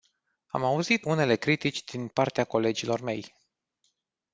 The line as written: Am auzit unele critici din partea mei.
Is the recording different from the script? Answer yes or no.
yes